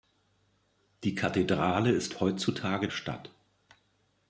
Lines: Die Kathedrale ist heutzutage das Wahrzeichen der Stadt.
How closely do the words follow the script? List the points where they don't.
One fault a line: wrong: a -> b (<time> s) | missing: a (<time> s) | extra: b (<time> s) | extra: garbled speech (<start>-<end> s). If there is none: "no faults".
missing: das Wahrzeichen der (2.9 s)